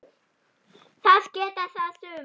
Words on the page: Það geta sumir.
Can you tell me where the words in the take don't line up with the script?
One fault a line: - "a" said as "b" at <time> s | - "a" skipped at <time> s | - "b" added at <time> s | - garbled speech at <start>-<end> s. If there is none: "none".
- "það" added at 1.8 s